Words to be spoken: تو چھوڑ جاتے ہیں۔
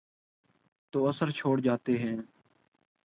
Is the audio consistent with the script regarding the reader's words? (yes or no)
no